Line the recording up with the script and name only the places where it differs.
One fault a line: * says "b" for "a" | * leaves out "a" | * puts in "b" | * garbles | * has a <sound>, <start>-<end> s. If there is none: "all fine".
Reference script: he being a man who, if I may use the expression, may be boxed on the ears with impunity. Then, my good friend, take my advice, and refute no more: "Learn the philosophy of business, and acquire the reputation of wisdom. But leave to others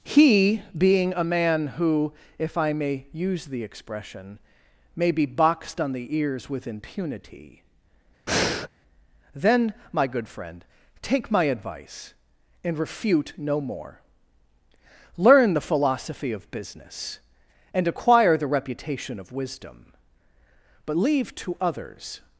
* has a breath, 8.3-8.7 s